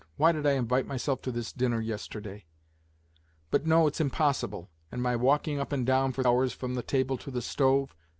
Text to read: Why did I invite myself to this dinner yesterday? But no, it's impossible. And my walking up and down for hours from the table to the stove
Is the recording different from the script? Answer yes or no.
no